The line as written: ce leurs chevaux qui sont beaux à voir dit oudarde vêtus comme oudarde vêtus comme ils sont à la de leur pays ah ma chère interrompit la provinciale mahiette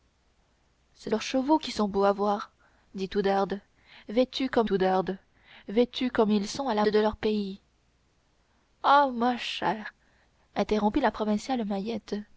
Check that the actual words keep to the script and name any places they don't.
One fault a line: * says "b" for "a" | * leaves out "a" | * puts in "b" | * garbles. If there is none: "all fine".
all fine